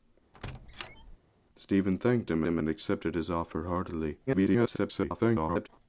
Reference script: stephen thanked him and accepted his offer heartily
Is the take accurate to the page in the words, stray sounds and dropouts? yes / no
no